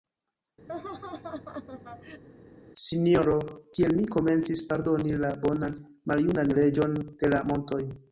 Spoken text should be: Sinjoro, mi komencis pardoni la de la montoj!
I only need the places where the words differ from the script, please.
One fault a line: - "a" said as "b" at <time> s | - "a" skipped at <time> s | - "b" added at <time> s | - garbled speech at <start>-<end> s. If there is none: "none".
- "kiel" added at 3.8 s
- "bonan maljunan Reĝon" added at 5.4 s